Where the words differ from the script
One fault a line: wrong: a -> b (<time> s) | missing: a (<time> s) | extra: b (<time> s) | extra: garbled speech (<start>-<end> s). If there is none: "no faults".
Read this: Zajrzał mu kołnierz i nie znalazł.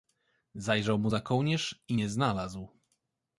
extra: za (1.1 s)